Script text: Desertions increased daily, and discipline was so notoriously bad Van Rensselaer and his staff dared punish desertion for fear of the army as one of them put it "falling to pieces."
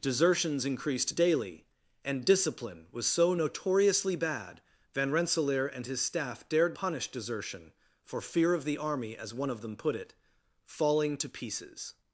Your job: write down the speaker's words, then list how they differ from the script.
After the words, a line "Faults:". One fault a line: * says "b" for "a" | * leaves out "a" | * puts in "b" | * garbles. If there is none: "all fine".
Desertions increased daily, and discipline was so notoriously bad Van Rensselaer and his staff dared punish desertion for fear of the army as one of them put it "falling to pieces."
Faults:
all fine